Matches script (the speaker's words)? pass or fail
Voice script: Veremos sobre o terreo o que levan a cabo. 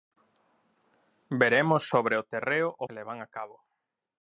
pass